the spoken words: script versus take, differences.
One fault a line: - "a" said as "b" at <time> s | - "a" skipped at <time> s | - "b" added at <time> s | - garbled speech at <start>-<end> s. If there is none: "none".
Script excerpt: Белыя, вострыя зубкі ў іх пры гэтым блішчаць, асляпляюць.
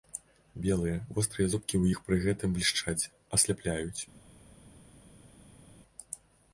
none